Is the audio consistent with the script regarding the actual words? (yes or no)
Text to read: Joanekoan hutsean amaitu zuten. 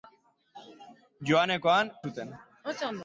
no